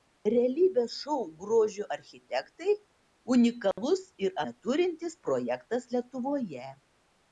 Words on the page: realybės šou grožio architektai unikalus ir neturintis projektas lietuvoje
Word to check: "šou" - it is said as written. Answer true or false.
true